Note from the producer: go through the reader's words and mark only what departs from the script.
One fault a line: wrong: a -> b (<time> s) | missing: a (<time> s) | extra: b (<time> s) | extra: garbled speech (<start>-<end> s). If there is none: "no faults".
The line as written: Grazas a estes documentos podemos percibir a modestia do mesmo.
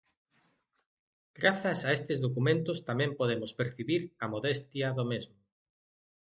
extra: tamén (2.9 s)